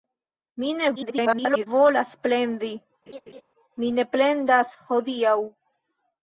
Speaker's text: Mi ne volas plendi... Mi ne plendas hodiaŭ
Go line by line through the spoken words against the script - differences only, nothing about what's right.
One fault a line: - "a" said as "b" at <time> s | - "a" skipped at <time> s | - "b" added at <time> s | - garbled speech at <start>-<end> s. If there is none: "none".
- garbled speech at 1.0-1.7 s